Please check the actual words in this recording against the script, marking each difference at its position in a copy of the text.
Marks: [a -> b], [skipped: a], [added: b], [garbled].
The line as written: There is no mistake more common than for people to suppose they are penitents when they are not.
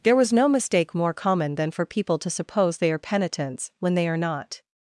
There [is -> was] no mistake more common than for people to suppose they are penitents when they are not.